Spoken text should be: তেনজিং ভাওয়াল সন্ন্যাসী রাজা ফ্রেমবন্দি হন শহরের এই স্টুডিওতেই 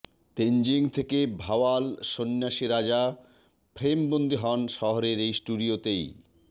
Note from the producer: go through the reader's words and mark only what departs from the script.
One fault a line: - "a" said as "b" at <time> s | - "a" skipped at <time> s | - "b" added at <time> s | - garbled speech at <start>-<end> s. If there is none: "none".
- "থেকে" added at 0.9 s